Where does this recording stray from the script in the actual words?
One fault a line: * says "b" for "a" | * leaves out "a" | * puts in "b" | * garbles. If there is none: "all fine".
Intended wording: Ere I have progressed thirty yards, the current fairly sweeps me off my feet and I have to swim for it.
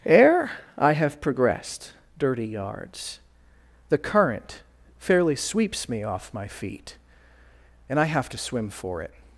* says "dirty" for "thirty"